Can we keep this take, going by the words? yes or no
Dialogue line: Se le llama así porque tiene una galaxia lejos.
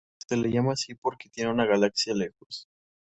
yes